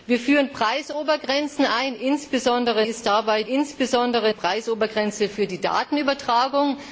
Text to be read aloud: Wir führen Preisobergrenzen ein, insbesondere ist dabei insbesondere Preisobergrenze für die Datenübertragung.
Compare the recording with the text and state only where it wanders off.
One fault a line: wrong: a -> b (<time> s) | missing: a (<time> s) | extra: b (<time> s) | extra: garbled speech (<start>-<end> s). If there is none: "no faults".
no faults